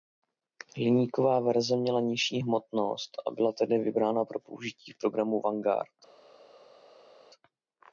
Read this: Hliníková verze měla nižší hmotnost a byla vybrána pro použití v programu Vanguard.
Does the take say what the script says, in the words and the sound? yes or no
no